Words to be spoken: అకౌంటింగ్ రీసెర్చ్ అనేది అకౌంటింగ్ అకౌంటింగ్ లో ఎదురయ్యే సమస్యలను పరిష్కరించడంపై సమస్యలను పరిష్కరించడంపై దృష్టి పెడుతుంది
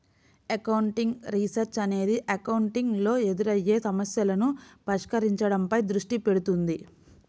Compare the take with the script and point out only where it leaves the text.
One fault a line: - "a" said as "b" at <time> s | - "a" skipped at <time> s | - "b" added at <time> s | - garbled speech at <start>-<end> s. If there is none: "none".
- "అకౌంటింగ్" skipped at 3.0 s
- "సమస్యలను పరిష్కరించడంపై" skipped at 5.8 s